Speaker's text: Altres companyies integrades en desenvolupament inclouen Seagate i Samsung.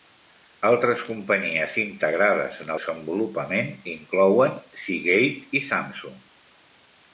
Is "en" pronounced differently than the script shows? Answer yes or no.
no